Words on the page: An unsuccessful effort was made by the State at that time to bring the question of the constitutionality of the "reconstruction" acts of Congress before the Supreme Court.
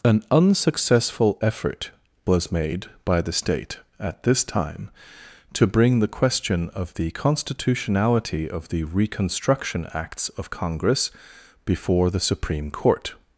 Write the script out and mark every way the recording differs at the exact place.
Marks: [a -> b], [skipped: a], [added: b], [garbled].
An unsuccessful effort was made by the State at [that -> this] time to bring the question of the constitutionality of the "reconstruction" acts of Congress before the Supreme Court.